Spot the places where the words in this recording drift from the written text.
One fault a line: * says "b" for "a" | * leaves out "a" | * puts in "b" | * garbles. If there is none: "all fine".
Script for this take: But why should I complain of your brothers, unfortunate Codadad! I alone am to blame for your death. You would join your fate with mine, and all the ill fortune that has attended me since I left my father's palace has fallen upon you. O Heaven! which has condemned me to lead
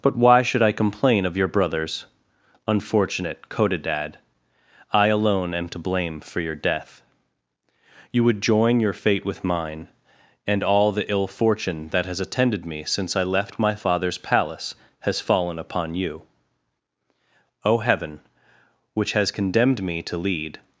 all fine